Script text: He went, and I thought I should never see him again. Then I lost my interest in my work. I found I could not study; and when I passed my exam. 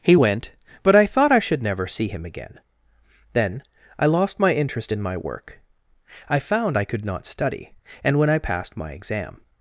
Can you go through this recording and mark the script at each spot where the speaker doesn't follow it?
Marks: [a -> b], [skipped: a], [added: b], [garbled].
He went, [and -> but] I thought I should never see him again. Then I lost my interest in my work. I found I could not study; and when I passed my exam.